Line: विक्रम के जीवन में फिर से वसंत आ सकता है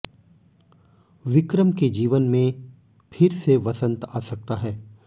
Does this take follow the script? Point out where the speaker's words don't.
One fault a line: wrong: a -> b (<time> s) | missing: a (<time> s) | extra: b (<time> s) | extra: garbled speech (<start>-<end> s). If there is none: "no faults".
no faults